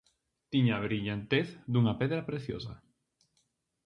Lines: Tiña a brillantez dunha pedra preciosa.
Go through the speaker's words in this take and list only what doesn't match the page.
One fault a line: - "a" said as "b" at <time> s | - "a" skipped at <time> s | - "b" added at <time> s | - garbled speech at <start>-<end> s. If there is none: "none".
none